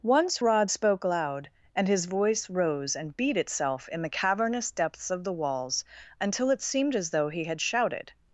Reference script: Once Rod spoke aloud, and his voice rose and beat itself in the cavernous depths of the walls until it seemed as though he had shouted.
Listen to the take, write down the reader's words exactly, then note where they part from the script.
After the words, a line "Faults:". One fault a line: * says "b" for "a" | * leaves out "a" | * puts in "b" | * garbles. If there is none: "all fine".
Once Rod spoke loud, and his voice rose and beat itself in the cavernous depths of the walls until it seemed as though he had shouted.
Faults:
* says "loud" for "aloud"